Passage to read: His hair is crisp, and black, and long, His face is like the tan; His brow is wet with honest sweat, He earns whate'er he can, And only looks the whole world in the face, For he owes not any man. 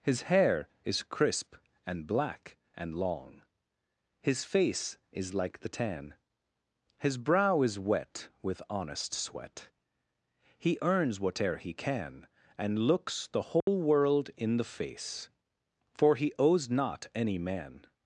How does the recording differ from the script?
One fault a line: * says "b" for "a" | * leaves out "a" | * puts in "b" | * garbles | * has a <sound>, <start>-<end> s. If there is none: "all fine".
* leaves out "only"
* has a dropout, 13.6-13.7 s